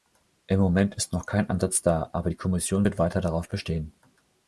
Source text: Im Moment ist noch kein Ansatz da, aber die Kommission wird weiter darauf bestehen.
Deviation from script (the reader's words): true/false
false